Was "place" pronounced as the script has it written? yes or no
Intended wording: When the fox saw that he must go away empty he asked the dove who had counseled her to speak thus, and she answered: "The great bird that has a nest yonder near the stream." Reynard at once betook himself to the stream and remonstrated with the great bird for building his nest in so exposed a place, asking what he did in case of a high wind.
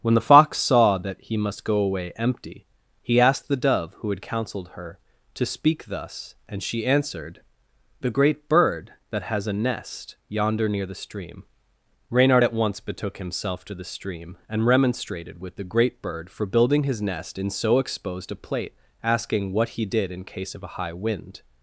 no